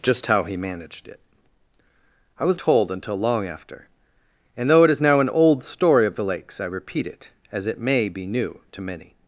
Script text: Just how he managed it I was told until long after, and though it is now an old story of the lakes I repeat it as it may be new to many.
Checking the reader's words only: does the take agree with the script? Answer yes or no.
yes